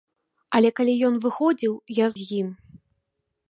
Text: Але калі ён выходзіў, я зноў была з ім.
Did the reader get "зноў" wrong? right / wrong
wrong